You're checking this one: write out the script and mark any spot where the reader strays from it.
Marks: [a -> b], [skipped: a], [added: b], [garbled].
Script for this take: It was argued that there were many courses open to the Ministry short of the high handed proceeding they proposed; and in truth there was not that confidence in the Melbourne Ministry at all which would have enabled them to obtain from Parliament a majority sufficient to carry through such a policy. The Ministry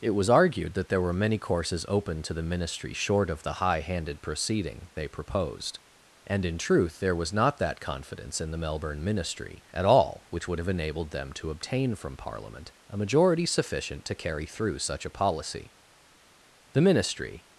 It was argued that there were many courses open to the Ministry short of the high handed proceeding they proposed; and in truth there was not that confidence in the Melbourne Ministry at all which would have enabled them to obtain from Parliament a majority sufficient to carry through such a policy. The Ministry